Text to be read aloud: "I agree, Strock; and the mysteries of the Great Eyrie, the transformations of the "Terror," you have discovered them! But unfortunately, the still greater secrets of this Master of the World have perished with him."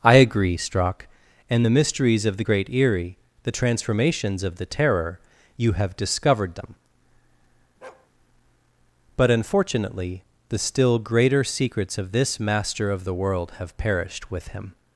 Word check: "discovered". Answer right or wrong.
right